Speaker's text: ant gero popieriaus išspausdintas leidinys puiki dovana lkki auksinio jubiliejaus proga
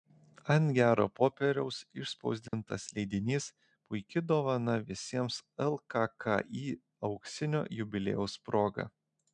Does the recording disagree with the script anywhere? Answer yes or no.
yes